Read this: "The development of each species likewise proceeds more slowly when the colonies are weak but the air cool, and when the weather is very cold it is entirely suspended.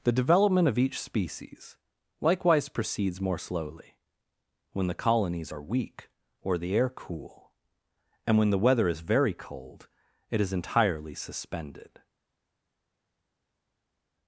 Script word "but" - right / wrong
wrong